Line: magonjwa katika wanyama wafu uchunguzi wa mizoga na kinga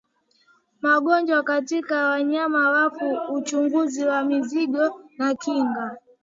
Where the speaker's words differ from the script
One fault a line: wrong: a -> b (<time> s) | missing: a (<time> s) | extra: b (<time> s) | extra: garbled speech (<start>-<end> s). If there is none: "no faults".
no faults